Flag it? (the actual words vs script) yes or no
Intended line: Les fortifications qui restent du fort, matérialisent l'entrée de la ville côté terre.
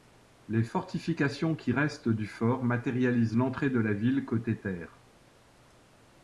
no